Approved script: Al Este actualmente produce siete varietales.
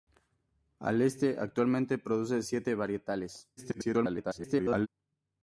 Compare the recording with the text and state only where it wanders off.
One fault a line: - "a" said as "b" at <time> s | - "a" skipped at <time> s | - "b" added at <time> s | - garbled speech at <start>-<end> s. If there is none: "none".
- garbled speech at 3.6-4.9 s